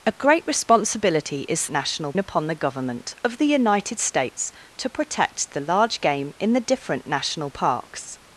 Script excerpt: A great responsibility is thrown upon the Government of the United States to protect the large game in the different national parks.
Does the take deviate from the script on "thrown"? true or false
true